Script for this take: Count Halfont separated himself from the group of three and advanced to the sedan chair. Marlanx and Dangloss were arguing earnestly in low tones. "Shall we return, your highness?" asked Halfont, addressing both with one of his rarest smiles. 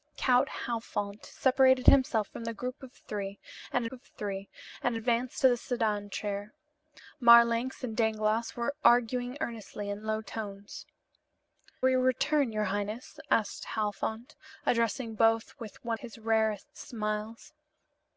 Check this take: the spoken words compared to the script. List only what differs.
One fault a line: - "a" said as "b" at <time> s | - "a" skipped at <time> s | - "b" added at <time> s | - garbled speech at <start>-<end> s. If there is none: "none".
- "of three and" added at 3.9 s
- "Shall" skipped at 10.8 s
- "of" skipped at 16.0 s